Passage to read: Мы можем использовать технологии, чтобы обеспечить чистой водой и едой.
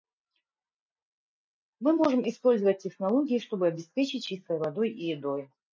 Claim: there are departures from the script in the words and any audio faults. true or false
false